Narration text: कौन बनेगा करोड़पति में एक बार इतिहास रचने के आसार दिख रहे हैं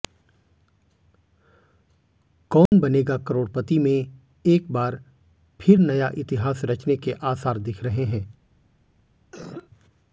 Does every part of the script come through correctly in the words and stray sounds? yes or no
no